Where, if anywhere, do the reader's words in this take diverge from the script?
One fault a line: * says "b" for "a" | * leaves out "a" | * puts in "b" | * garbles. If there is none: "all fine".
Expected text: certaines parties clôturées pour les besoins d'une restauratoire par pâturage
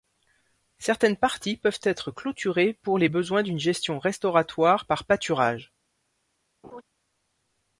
* puts in "peuvent être"
* puts in "gestion"